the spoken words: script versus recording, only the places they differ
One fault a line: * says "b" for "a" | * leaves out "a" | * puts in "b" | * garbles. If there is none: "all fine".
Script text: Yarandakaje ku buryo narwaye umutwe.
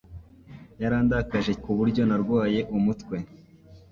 all fine